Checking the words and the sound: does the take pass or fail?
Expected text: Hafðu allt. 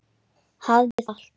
fail